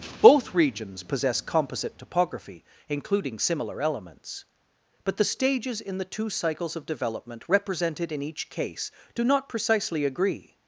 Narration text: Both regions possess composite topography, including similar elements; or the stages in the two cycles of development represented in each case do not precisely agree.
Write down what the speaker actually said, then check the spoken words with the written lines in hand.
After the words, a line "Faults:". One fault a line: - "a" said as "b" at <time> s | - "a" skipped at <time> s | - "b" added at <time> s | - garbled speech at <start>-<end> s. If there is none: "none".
Both regions possess composite topography, including similar elements; but the stages in the two cycles of development represented in each case do not precisely agree.
Faults:
- "or" said as "but" at 5.0 s